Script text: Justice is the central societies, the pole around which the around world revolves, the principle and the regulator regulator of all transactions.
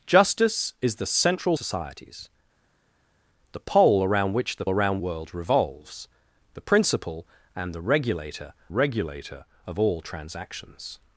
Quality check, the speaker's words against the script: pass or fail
pass